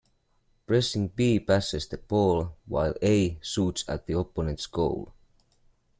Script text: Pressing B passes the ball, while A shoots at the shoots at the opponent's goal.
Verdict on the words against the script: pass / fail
fail